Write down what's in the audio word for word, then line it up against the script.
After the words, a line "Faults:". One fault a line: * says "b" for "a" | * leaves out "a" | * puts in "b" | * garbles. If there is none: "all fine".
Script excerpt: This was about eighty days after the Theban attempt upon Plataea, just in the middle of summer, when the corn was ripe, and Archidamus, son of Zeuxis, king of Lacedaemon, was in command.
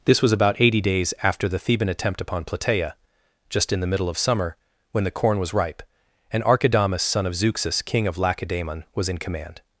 This was about eighty days after the Theban attempt upon Plataea, just in the middle of summer, when the corn was ripe, and Archidamus, son of Zeuxis, king of Lacedaemon, was in command.
Faults:
all fine